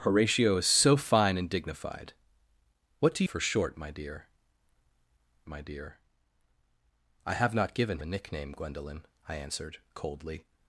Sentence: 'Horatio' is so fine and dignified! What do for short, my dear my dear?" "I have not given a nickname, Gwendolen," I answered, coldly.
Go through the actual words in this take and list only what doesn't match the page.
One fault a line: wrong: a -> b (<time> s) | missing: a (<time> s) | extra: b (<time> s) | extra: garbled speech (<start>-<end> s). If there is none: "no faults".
no faults